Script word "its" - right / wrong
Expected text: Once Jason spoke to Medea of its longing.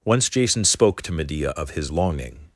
wrong